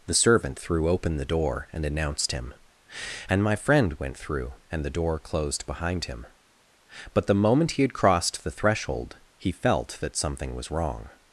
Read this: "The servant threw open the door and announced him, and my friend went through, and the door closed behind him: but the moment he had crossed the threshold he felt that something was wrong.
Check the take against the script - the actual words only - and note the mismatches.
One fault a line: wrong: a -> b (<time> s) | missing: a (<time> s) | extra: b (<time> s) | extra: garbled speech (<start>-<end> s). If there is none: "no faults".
no faults